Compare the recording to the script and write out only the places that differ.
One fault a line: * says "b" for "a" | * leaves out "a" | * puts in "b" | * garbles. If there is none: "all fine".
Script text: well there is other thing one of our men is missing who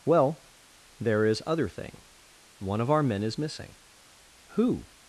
all fine